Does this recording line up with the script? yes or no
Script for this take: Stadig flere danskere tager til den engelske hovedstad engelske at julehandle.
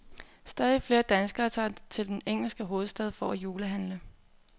no